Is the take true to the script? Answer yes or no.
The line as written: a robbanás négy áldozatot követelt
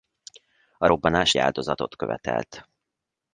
no